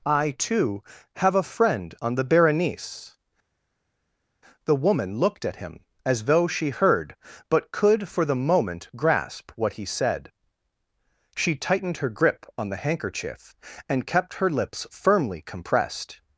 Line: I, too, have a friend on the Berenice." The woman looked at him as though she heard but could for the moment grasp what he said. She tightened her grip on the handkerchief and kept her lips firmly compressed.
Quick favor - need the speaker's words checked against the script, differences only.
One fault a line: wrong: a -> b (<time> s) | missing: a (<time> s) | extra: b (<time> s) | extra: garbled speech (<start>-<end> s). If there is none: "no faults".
no faults